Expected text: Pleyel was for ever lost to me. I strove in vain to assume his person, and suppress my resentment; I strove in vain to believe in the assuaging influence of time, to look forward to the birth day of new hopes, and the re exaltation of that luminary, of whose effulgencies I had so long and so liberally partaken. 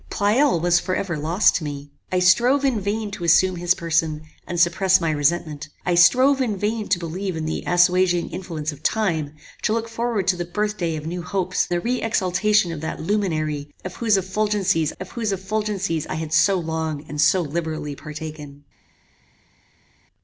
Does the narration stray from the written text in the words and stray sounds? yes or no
yes